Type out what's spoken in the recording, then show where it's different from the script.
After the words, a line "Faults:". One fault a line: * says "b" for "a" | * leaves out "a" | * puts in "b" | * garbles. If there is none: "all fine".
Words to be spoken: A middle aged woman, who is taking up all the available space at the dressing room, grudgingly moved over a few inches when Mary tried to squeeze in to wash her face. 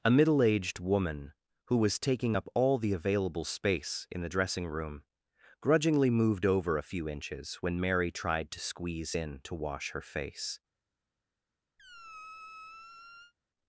A middle aged woman, who was taking up all the available space in the dressing room, grudgingly moved over a few inches when Mary tried to squeeze in to wash her face.
Faults:
* says "was" for "is"
* says "in" for "at"